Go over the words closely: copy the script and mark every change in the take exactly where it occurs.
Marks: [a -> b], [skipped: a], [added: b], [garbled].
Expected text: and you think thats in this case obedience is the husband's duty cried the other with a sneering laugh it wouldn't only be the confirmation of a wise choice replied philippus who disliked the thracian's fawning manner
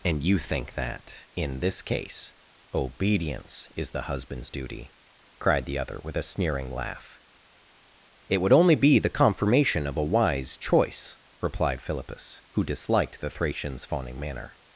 and you think [thats -> that] in this case obedience is the husband's duty cried the other with a sneering laugh it [wouldn't -> would] only be the confirmation of a wise choice replied philippus who disliked the thracian's fawning manner